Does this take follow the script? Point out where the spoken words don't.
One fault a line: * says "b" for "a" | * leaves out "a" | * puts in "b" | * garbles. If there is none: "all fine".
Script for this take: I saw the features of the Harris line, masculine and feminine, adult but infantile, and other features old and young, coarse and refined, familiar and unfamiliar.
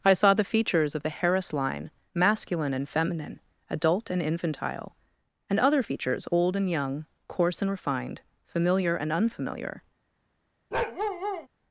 * says "and" for "but"